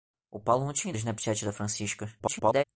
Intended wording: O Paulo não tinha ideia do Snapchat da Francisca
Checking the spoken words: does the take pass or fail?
fail